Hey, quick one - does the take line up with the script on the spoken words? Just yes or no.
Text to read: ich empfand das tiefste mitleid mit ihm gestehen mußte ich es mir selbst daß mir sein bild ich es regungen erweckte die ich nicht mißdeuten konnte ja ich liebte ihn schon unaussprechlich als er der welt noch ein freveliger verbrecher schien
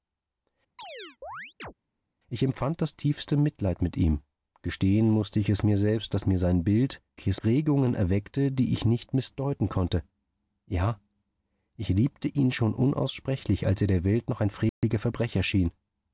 yes